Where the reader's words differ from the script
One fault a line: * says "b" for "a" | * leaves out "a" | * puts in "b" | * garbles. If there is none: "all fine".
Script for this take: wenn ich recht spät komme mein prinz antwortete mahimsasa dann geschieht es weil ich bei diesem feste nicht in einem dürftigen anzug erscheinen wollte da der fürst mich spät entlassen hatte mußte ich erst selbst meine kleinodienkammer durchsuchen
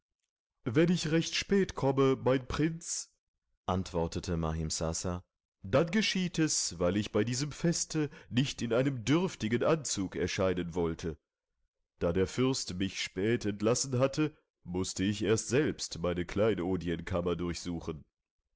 all fine